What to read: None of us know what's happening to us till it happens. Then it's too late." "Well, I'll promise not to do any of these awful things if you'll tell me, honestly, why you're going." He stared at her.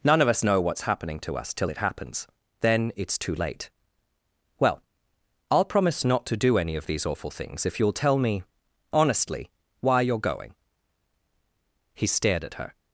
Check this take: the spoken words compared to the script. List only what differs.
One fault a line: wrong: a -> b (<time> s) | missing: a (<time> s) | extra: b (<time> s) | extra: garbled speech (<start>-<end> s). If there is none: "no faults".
no faults